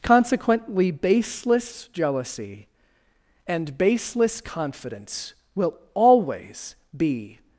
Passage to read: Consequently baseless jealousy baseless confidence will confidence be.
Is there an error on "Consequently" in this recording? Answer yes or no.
no